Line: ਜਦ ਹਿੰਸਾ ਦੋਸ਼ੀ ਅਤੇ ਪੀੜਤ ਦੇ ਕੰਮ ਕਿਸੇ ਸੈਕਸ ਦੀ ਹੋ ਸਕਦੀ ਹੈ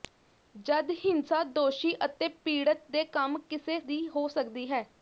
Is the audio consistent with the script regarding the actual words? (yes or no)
no